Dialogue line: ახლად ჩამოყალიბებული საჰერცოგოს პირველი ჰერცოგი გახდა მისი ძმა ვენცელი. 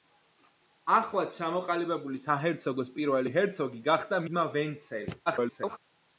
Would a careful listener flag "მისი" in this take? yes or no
yes